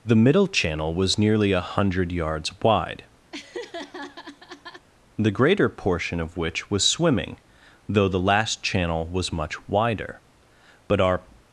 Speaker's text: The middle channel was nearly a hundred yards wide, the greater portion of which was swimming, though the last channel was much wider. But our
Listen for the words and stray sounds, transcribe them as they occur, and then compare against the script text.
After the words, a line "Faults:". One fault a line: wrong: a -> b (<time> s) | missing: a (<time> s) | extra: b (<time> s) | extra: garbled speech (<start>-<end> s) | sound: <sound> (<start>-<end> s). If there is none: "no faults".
The middle channel was nearly a hundred yards wide, the greater portion of which was swimming, though the last channel was much wider. But our
Faults:
sound: laugh (3.3-4.9 s)